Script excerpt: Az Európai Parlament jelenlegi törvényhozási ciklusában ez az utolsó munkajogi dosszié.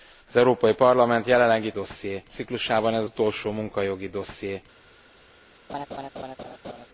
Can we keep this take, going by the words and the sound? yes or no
no